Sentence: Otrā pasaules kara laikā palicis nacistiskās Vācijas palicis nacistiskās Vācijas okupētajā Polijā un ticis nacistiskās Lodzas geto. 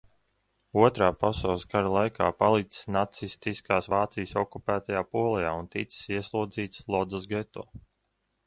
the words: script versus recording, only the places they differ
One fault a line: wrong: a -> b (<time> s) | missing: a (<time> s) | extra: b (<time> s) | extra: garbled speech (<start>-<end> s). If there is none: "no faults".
missing: palicis nacistiskās Vācijas (4.4 s)
wrong: nacistiskās -> ieslodzīts (6.2 s)